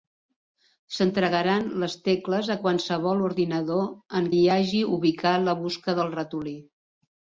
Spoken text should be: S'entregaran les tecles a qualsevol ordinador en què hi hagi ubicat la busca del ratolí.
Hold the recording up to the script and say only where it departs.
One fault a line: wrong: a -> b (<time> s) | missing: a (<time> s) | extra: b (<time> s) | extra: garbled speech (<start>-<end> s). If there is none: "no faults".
missing: què (4.3 s)